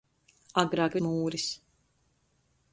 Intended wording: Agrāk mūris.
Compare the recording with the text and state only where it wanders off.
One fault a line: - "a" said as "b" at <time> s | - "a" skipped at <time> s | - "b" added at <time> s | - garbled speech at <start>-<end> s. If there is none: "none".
none